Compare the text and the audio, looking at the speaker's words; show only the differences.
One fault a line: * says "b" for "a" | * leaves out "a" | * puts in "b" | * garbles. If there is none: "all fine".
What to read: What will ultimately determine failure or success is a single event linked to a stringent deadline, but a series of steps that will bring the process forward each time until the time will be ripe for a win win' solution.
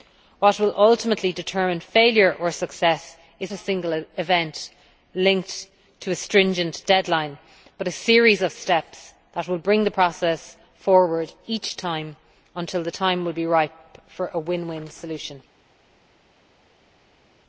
all fine